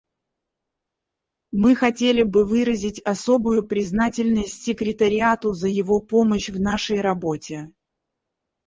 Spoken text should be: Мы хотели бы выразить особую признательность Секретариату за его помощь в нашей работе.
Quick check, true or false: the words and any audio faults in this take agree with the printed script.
true